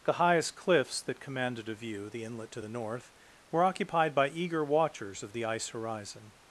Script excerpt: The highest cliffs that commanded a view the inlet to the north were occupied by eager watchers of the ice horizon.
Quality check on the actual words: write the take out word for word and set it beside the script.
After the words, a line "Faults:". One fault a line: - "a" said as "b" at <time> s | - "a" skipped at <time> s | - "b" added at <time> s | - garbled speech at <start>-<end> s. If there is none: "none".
The highest cliffs that commanded a view the inlet to the north were occupied by eager watchers of the ice horizon.
Faults:
none